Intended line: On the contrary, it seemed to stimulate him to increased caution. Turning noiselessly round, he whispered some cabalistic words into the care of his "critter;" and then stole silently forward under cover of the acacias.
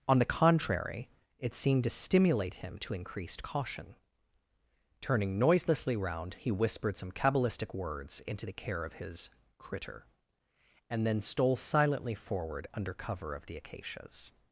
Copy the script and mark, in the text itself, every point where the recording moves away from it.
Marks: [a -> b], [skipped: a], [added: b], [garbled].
On the contrary, it seemed to stimulate him to increased caution. Turning noiselessly round, he whispered some cabalistic words into the care of his "critter;" and then stole silently forward under cover of the acacias.